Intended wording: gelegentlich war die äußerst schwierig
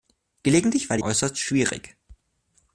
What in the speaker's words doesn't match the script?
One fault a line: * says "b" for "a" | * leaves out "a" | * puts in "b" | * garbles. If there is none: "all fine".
all fine